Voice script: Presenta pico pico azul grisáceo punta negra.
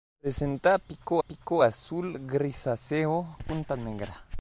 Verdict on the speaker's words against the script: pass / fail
pass